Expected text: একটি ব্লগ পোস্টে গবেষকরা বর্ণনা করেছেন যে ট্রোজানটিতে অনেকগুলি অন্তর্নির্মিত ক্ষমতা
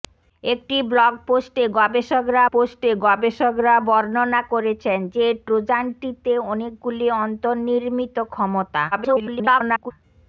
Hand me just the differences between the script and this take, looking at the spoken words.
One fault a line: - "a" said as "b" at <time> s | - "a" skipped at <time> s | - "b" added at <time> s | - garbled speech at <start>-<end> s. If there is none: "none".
- "পোস্টে গবেষকরা" added at 2.5 s
- garbled speech at 8.9-9.9 s